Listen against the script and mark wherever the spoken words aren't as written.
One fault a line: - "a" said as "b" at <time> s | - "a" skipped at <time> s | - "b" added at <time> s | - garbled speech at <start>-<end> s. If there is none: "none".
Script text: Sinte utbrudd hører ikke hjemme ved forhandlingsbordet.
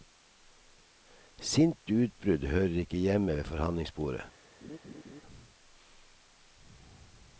none